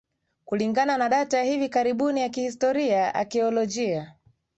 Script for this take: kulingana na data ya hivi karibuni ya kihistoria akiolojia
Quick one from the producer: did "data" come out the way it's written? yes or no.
yes